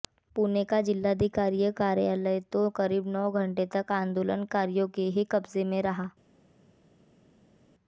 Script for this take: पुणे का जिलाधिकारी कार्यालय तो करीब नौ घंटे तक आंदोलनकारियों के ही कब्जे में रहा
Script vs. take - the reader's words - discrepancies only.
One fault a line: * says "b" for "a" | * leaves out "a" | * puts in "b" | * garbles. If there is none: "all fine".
all fine